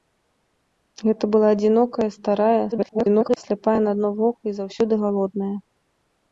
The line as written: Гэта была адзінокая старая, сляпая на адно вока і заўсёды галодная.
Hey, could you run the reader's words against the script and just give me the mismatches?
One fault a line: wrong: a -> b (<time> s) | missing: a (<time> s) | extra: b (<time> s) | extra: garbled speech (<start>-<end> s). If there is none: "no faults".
extra: garbled speech (2.7-3.4 s)